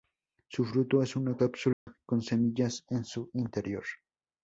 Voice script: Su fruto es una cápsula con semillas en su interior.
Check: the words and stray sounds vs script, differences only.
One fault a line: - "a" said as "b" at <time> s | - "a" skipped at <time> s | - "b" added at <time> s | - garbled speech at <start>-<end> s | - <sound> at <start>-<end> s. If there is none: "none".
- dropout at 1.7-1.9 s